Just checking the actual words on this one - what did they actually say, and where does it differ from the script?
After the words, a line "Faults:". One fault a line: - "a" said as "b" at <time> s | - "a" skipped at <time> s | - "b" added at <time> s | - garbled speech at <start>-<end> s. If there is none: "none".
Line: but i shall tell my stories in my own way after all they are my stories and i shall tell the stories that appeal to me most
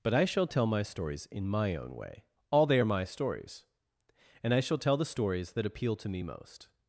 but i shall tell my stories in my own way all they are my stories and i shall tell the stories that appeal to me most
Faults:
- "after" skipped at 2.2 s